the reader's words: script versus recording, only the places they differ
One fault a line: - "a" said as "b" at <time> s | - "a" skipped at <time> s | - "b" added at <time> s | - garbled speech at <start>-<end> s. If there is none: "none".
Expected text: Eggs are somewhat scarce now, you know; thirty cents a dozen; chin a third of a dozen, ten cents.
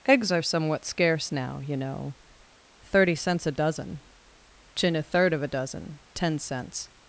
none